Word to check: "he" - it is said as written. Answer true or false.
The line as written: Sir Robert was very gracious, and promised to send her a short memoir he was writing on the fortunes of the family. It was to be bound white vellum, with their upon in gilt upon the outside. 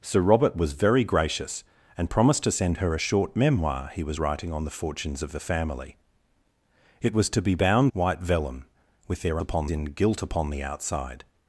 true